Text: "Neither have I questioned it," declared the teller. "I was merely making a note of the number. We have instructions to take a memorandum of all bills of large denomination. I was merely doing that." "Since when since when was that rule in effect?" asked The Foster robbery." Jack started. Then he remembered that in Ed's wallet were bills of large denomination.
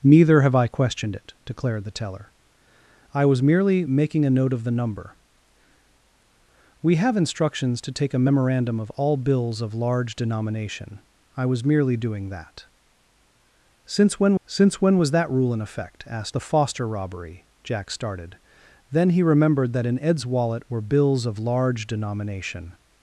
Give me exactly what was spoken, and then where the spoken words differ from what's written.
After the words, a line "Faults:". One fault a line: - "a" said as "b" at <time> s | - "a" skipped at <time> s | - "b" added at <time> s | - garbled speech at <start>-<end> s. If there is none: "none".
"Neither have I questioned it," declared the teller. "I was merely making a note of the number. We have instructions to take a memorandum of all bills of large denomination. I was merely doing that." "Since when since when was that rule in effect?" asked The Foster robbery." Jack started. Then he remembered that in Ed's wallet were bills of large denomination.
Faults:
none